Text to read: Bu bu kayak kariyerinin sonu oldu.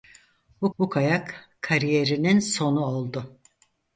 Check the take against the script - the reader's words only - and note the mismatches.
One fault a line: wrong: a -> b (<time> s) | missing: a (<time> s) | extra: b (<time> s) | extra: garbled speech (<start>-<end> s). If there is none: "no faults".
no faults